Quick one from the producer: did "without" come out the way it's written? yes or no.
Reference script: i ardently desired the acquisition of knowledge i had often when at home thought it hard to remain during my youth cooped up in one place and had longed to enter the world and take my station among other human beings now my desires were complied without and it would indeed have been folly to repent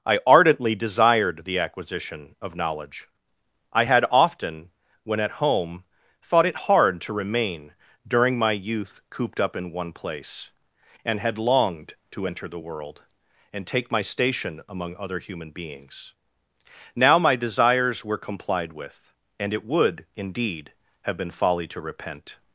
no